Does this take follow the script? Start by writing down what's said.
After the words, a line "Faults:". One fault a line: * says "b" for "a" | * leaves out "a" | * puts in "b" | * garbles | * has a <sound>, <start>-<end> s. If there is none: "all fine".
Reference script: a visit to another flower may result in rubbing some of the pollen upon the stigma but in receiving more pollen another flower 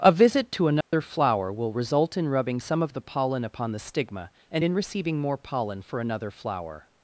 a visit to another flower will result in rubbing some of the pollen upon the stigma and in receiving more pollen for another flower
Faults:
* has a dropout, 0.8-0.9 s
* says "will" for "may"
* says "and" for "but"
* puts in "for"